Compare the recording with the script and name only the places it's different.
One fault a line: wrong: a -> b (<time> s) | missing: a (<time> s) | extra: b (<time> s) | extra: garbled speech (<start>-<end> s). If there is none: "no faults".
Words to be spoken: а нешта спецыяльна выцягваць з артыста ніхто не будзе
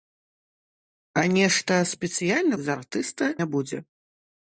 missing: выцягваць (2.5 s)
missing: ніхто (3.2 s)